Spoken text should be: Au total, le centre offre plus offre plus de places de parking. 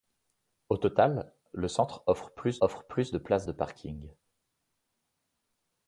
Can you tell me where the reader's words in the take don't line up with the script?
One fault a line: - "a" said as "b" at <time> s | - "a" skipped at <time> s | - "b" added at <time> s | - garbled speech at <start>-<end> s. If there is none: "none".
none